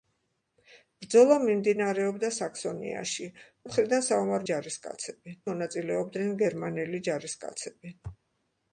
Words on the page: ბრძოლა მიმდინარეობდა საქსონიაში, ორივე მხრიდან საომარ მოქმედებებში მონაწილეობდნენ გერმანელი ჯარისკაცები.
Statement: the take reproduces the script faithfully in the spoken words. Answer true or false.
false